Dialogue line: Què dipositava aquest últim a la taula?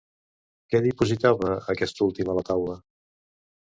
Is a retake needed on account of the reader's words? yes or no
no